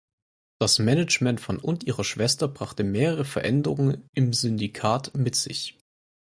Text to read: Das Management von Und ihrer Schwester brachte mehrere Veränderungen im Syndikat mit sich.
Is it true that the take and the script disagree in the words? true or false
false